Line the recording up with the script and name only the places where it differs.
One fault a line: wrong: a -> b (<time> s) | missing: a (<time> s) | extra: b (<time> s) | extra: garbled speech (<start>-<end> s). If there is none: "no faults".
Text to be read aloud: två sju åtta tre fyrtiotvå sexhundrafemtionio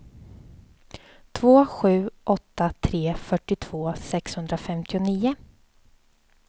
no faults